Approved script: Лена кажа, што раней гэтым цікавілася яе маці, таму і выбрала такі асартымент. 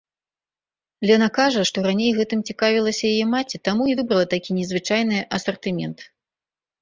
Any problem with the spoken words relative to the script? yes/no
yes